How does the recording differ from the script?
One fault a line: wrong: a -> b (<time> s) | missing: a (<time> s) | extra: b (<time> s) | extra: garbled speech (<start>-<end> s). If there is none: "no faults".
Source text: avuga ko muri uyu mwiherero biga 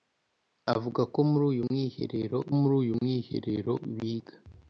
extra: muri uyu mwiherero (2.6 s)